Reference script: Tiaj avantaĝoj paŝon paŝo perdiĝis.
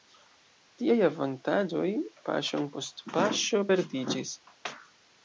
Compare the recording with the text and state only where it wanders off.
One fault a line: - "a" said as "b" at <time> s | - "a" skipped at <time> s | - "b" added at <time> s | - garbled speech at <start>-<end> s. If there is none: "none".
- "post" added at 2.8 s